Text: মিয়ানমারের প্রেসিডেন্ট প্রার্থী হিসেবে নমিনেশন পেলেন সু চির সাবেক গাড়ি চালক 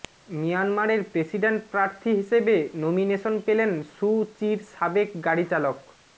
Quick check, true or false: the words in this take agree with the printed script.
true